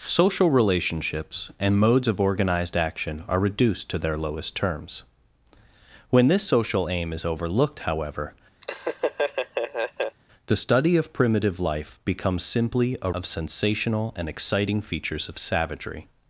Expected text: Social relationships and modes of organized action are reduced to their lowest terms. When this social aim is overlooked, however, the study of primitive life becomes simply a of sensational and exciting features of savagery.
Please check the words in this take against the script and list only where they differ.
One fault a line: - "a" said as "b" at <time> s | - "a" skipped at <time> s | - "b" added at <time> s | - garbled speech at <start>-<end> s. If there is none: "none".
none